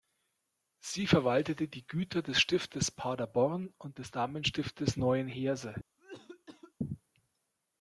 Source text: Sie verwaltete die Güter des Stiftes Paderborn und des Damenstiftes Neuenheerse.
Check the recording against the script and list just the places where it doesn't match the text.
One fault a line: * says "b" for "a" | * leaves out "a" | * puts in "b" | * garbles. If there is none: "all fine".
all fine